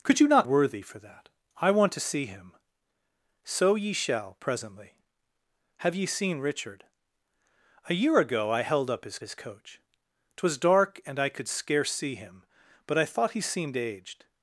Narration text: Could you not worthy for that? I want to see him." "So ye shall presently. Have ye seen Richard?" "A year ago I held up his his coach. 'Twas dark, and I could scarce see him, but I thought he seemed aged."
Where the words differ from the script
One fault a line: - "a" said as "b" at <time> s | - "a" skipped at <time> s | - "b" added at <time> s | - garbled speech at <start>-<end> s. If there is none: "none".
none